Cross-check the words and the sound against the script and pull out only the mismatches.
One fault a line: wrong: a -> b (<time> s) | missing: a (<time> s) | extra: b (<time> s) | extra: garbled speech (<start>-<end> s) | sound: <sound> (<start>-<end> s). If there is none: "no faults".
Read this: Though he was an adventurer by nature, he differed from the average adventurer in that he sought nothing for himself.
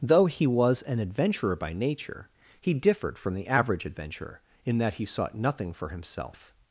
no faults